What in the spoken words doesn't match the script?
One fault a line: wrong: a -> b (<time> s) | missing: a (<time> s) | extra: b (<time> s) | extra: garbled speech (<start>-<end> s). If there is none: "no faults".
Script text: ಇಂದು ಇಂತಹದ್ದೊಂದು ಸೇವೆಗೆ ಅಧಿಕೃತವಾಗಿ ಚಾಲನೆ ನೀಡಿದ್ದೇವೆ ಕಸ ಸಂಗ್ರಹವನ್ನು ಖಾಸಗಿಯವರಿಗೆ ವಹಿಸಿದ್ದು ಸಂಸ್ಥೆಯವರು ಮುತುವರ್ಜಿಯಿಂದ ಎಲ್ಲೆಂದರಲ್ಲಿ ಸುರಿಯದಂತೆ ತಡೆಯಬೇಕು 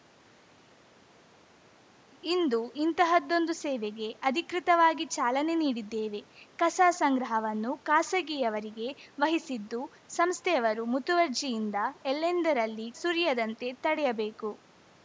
no faults